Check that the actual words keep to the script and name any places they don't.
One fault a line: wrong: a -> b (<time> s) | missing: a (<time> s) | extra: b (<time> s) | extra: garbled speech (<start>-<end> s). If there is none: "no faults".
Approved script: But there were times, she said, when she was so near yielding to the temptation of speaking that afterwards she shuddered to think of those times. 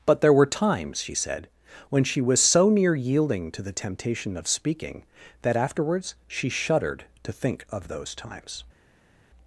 no faults